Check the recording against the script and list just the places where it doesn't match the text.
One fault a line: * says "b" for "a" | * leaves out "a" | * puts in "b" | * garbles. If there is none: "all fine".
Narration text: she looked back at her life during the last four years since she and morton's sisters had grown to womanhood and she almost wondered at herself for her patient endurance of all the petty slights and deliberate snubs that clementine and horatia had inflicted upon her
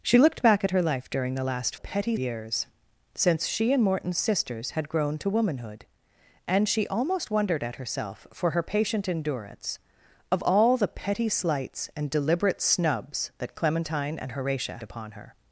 * says "petty" for "four"
* leaves out "had inflicted"